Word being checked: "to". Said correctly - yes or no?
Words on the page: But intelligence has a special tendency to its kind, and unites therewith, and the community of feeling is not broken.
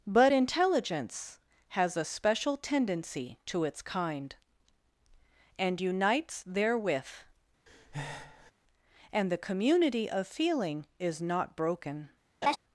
yes